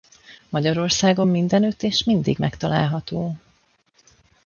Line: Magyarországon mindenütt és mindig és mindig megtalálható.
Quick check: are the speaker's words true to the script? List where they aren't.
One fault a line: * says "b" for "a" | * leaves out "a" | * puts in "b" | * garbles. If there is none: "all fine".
* leaves out "és mindig"